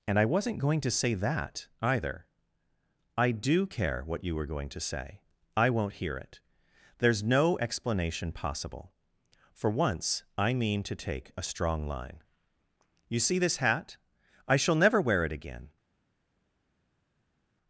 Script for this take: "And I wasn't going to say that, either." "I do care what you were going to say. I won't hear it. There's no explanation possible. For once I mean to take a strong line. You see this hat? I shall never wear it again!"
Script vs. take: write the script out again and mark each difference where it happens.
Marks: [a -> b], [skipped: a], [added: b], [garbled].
"And I wasn't going to say that, either." "I do care what you were going to say. I won't hear it. There's no explanation possible. For once I mean to take a strong line. You see this hat? I shall never wear it again!"